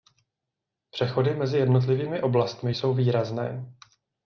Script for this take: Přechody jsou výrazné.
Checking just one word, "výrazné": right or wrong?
right